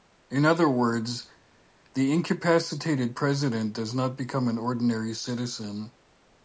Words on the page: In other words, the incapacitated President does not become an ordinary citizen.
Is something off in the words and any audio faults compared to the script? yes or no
no